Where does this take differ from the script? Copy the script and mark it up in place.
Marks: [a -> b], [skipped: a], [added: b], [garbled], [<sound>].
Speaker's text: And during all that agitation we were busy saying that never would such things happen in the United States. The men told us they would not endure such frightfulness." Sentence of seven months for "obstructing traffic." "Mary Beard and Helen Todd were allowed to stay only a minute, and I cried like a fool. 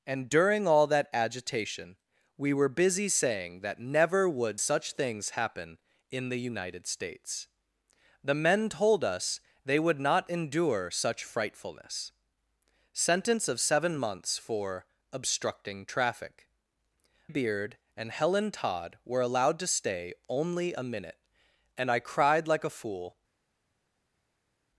And during all that agitation we were busy saying that never would such things happen in the United States. The men told us they would not endure such frightfulness." Sentence of seven months for "obstructing traffic." [skipped: "Mary] Beard and Helen Todd were allowed to stay only a minute, and I cried like a fool.